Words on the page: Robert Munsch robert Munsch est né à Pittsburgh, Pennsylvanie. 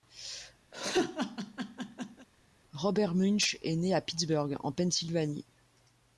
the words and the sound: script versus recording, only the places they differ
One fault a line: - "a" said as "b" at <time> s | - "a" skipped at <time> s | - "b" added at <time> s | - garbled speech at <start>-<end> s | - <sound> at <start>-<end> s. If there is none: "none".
- laugh at 0.7-2.3 s
- "robert Munsch" skipped at 3.6 s
- "en" added at 4.6 s